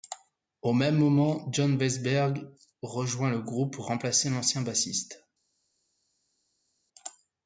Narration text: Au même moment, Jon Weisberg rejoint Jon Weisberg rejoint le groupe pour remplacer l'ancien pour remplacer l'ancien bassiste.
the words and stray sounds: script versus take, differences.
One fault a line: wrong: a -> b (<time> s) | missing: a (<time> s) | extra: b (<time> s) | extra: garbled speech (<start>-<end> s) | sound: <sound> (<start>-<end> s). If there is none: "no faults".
missing: Jon Weisberg rejoint (3.3 s)
missing: pour remplacer l'ancien (4.6 s)